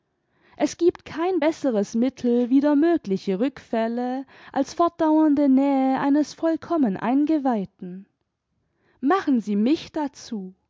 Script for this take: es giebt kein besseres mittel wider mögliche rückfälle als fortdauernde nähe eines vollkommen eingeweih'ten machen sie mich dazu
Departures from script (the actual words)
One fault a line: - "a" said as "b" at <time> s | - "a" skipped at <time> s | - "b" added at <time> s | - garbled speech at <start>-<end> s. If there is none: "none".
none